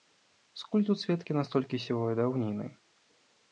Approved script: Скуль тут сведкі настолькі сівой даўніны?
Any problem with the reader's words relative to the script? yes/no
no